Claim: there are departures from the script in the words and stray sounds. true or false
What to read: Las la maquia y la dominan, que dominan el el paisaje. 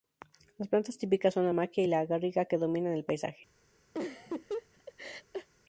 true